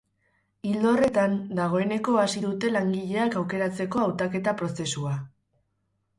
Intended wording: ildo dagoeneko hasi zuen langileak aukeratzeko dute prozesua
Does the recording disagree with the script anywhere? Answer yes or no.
yes